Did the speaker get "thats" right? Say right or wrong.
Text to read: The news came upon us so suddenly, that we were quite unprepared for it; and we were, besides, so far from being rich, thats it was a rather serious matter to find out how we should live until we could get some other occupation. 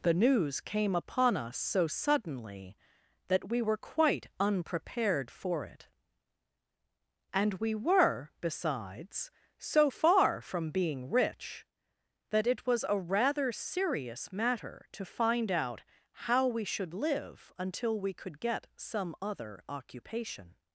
wrong